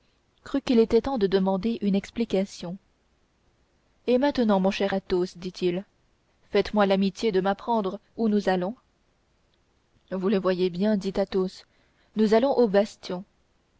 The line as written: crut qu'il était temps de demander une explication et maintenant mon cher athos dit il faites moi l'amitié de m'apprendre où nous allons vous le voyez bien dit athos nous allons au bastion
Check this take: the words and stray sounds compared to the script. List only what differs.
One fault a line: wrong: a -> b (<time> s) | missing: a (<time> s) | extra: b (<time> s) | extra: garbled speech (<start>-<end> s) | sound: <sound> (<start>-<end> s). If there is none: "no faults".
no faults